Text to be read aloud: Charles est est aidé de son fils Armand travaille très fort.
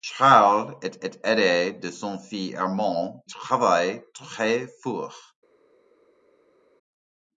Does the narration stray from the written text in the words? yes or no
no